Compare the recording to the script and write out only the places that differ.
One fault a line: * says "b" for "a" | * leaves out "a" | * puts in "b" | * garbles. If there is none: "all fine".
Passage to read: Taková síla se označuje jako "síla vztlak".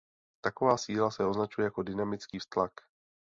* says "dynamický" for "síla"